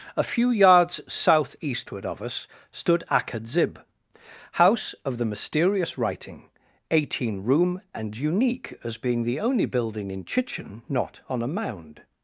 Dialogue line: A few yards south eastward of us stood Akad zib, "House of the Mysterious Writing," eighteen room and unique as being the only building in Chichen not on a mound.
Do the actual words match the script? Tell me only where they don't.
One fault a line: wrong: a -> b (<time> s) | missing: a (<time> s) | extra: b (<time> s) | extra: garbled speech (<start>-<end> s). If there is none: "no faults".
no faults